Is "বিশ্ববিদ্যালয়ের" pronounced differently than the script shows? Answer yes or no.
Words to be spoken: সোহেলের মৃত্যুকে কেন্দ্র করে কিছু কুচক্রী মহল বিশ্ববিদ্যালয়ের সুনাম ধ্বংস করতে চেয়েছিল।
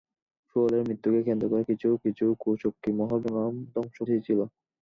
yes